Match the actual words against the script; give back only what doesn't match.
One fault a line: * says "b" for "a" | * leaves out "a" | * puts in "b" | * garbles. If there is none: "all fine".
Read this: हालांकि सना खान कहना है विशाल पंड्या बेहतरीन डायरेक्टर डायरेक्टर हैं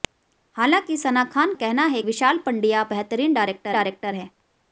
all fine